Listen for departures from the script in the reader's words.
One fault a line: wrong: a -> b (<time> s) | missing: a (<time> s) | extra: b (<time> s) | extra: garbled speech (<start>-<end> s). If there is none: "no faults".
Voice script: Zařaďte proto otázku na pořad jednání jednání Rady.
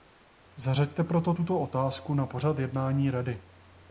extra: tuto (1.3 s)
missing: jednání (3.1 s)